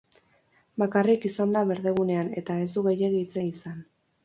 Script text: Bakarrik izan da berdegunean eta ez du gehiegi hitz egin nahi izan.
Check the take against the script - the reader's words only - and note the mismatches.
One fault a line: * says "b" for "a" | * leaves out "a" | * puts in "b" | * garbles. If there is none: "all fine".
* leaves out "egin"